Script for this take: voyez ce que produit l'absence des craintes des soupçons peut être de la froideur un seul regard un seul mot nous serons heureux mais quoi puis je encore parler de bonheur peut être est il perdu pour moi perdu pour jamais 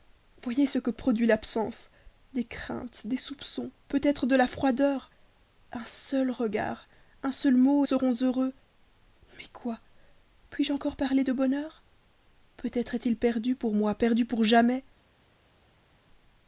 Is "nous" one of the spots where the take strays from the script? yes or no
yes